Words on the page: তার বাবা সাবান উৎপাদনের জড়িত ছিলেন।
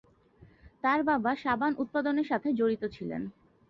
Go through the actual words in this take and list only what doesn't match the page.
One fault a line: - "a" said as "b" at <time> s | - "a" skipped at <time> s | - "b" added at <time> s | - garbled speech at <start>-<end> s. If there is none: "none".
- "সাথে" added at 2.3 s